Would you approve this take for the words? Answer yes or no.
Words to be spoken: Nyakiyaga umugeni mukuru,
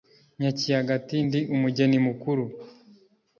no